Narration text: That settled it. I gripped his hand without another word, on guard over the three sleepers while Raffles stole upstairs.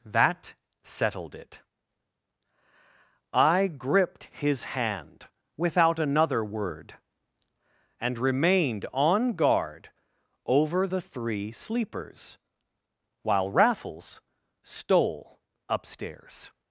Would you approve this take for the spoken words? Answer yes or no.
no